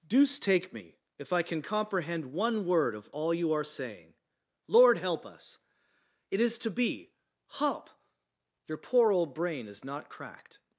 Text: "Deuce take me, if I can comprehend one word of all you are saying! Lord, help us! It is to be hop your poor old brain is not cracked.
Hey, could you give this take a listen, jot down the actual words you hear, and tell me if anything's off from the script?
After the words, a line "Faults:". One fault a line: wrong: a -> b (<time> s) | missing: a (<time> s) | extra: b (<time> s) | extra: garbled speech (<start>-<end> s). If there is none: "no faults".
"Deuce take me, if I can comprehend one word of all you are saying! Lord, help us! It is to be hop your poor old brain is not cracked.
Faults:
no faults